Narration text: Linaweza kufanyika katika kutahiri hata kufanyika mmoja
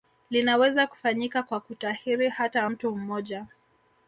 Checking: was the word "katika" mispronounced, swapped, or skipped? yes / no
yes